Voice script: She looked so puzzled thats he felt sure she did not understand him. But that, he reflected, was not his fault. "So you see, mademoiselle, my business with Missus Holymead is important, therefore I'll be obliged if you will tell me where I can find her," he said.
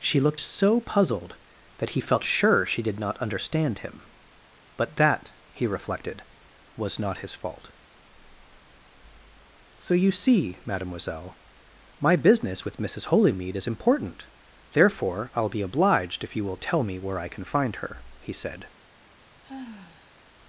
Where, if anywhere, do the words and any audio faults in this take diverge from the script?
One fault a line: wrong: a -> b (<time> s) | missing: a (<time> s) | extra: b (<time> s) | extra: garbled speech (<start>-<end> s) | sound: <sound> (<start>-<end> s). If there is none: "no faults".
wrong: thats -> that (1.8 s)
sound: sigh (19.4-20.2 s)